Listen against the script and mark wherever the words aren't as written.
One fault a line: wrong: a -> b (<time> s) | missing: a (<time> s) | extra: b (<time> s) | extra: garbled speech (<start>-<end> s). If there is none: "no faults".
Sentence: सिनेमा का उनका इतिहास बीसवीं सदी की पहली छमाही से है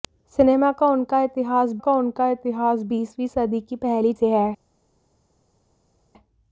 extra: का उनका इतिहास (1.8 s)
missing: छमाही (4.1 s)